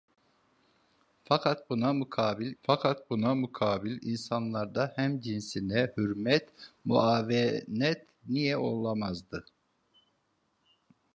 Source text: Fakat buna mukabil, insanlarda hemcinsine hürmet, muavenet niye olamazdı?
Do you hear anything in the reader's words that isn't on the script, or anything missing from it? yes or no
yes